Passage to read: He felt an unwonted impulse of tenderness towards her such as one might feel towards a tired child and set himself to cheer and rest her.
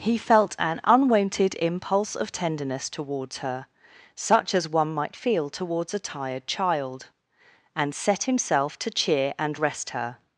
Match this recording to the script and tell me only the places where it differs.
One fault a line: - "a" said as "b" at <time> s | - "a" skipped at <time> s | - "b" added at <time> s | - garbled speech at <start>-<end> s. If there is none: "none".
none